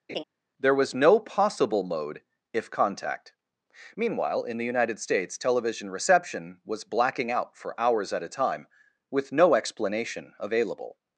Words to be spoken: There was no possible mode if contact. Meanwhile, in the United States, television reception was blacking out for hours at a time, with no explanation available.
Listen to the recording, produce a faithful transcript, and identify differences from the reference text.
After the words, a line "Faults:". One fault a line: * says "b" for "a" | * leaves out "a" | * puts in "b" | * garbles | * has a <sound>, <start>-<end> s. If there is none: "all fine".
There was no possible mode if contact. Meanwhile, in the United States, television reception was blacking out for hours at a time, with no explanation available.
Faults:
* has a laugh, 0.1-0.2 s